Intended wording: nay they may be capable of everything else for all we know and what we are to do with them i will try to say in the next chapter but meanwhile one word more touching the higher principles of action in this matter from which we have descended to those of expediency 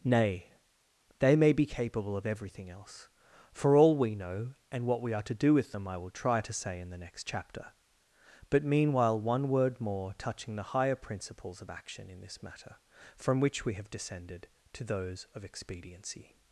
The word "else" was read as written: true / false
true